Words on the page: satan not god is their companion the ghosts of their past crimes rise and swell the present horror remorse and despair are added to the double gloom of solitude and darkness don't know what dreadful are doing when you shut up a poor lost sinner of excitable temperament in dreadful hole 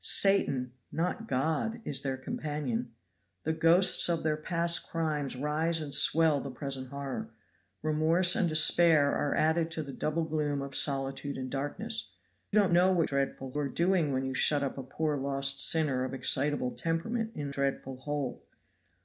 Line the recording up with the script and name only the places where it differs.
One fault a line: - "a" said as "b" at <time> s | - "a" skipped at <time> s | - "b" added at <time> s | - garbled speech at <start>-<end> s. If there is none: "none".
none